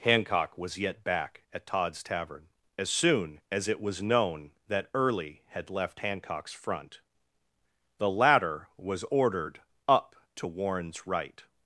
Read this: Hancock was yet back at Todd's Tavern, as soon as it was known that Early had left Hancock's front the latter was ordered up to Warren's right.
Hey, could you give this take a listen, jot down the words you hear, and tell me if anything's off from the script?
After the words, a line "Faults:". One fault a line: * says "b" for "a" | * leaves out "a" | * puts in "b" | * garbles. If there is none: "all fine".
Hancock was yet back at Todd's Tavern, as soon as it was known that Early had left Hancock's front the latter was ordered up to Warren's right.
Faults:
all fine